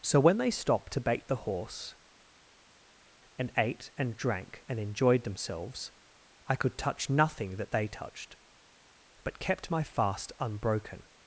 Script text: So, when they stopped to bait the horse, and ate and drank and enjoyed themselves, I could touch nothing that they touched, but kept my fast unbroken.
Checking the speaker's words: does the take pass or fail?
pass